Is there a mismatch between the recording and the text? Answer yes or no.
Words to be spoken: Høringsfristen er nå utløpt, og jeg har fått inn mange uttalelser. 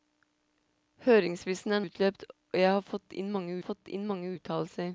yes